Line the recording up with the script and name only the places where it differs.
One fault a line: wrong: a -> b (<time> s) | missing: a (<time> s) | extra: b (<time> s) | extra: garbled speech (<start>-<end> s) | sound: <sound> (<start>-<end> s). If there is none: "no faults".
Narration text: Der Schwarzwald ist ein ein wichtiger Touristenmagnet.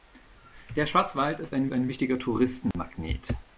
sound: dropout (2.7-2.7 s)